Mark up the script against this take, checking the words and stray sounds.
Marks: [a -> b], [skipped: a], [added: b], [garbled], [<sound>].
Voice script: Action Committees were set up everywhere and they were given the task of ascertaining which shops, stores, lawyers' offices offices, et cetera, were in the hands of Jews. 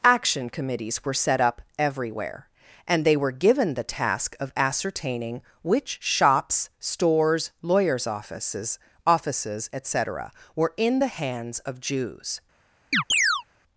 Action Committees were set up everywhere and they were given the task of ascertaining which shops, stores, lawyers' offices offices, et cetera, were in the hands of Jews. [chirp]